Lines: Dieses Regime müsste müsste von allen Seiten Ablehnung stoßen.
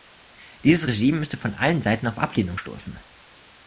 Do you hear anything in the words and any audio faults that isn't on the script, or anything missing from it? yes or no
yes